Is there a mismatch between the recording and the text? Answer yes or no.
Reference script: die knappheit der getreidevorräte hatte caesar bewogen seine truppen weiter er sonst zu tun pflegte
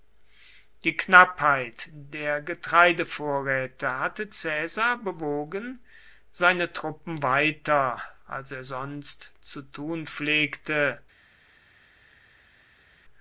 yes